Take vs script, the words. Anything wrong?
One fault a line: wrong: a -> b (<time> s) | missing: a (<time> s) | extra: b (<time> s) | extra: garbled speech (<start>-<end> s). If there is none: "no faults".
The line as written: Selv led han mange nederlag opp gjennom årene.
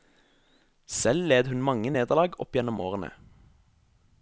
wrong: han -> hun (1.5 s)